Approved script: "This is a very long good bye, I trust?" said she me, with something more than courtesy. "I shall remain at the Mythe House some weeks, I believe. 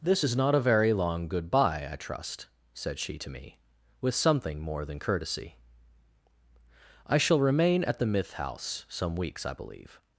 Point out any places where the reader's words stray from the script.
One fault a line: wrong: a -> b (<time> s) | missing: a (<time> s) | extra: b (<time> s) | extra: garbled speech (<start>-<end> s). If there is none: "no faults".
extra: not (0.4 s)
extra: to (3.2 s)